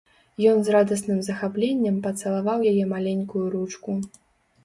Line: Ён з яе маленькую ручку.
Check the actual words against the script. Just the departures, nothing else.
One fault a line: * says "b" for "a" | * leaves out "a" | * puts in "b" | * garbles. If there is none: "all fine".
* puts in "радасным захапленнем пацалаваў"